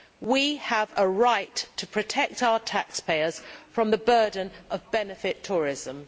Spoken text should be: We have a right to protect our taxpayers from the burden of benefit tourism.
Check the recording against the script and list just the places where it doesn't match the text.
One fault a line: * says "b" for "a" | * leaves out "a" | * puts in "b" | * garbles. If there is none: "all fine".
all fine